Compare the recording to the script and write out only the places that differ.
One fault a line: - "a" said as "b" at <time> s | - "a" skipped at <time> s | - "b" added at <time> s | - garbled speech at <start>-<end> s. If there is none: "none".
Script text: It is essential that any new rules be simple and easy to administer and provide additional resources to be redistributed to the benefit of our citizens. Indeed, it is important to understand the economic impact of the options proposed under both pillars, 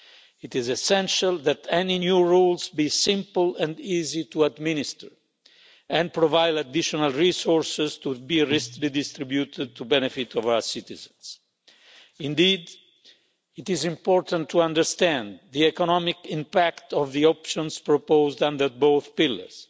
none